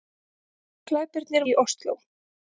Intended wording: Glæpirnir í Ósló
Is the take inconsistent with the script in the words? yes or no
no